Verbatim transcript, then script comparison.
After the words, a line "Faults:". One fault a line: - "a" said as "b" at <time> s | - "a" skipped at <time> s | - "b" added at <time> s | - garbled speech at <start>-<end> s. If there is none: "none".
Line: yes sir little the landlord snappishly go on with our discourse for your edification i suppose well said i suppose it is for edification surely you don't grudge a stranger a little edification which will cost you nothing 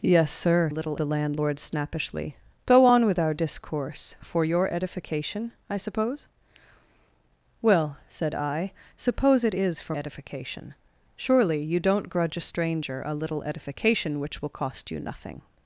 yes sir little the landlord snappishly go on with our discourse for your edification i suppose well said i suppose it is for edification surely you don't grudge a stranger a little edification which will cost you nothing
Faults:
none